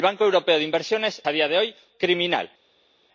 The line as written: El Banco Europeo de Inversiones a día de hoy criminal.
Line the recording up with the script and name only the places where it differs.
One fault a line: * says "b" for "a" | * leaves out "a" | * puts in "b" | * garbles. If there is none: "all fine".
all fine